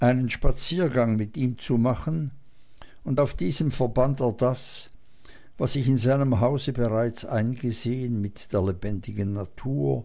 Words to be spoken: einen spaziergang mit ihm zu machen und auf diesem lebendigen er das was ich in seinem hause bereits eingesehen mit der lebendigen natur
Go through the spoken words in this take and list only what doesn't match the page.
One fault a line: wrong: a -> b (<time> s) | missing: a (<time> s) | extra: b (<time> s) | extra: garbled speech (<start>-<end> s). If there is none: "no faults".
wrong: lebendigen -> verband (3.7 s)